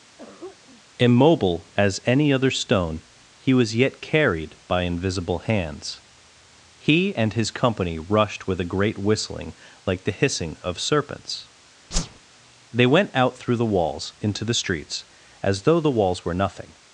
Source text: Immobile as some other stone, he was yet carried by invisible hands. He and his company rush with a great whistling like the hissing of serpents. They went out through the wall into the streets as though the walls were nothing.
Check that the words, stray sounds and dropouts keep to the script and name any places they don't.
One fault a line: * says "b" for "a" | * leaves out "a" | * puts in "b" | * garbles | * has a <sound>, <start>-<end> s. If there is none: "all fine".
* has a throat clearing, 0.2-0.8 s
* says "any" for "some"
* says "rushed" for "rush"
* has a whoosh, 11.9-12.2 s
* says "walls" for "wall"